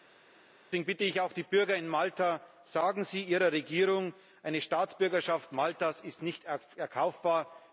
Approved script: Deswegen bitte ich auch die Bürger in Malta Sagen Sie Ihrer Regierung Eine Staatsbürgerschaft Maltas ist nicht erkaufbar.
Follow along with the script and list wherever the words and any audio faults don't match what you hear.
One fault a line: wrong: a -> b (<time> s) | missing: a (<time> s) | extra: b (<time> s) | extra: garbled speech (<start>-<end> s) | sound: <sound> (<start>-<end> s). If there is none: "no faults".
no faults